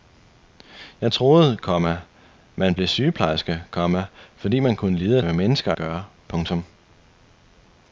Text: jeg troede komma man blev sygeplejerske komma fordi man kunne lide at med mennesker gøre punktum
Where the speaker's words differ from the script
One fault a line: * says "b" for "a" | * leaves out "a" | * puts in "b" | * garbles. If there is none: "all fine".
all fine